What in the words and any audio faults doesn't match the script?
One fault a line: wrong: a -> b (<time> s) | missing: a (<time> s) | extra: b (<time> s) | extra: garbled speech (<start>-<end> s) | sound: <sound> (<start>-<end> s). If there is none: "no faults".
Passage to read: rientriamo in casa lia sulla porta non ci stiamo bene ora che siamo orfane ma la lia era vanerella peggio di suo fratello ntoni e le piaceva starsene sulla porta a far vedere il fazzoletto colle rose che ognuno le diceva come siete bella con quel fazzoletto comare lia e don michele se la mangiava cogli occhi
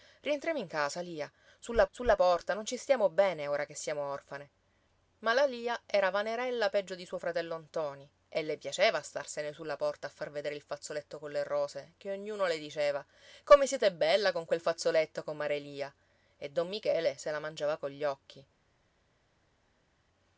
extra: sulla (1.9 s)